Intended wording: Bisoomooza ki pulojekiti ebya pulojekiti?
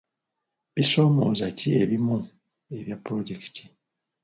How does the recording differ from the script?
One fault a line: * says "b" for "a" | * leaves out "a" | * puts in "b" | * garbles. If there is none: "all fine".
* says "ebimu" for "pulojekiti"